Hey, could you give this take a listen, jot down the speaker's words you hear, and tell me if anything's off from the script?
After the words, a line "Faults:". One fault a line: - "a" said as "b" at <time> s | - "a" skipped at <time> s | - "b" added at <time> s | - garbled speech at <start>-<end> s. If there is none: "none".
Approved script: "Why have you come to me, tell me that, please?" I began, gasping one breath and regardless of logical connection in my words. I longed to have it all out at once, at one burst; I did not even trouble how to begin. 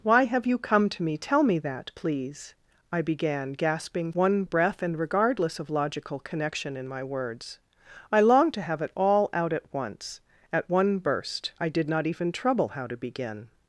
"Why have you come to me, tell me that, please?" I began, gasping one breath and regardless of logical connection in my words. I longed to have it all out at once, at one burst; I did not even trouble how to begin.
Faults:
none